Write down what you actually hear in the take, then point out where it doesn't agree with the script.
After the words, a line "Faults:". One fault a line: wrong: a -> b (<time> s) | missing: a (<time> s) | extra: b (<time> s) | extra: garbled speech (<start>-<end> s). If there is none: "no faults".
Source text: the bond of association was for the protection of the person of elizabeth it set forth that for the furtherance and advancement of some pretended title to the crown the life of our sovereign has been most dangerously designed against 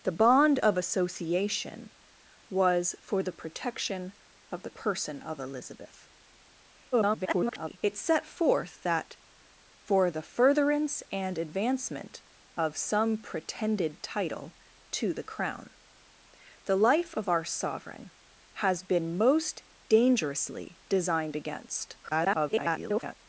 the bond of association was for the protection of the person of elizabeth [garbled] it set forth that for the furtherance and advancement of some pretended title to the crown the life of our sovereign has been most dangerously designed against [garbled]
Faults:
extra: garbled speech (6.9-7.8 s)
extra: garbled speech (22.0-23.1 s)